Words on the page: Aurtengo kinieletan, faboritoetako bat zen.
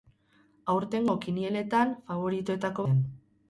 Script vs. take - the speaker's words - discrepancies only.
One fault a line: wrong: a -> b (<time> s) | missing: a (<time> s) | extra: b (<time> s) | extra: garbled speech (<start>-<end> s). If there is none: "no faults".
missing: bat (2.9 s)